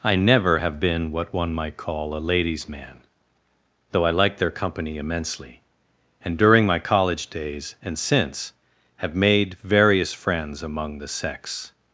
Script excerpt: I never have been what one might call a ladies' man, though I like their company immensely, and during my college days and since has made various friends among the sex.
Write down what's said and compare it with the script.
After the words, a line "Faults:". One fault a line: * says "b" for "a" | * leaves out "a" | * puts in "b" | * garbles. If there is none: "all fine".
I never have been what one might call a ladies' man, though I like their company immensely, and during my college days and since have made various friends among the sex.
Faults:
* says "have" for "has"